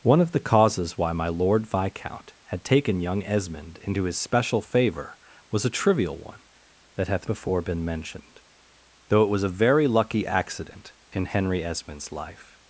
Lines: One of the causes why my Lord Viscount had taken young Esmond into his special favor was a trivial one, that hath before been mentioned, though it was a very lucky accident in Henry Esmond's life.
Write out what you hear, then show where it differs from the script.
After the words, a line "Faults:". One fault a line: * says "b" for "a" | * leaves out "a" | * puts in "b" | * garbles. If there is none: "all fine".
One of the causes why my Lord Viscount had taken young Esmond into his special favor was a trivial one, that hath before been mentioned, though it was a very lucky accident in Henry Esmond's life.
Faults:
all fine